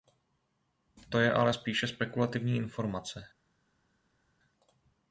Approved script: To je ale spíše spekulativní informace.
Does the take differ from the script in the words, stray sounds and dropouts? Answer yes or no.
no